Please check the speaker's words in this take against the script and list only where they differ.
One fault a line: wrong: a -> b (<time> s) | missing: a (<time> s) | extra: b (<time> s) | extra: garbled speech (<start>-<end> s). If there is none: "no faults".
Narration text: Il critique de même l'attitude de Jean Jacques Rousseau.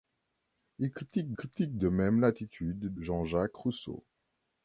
extra: critique (1.3 s)
missing: de (2.9 s)